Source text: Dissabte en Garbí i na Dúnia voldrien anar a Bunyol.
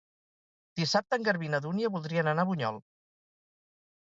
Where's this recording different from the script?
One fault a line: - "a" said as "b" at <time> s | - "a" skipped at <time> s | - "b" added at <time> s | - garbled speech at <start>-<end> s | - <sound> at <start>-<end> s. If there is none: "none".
none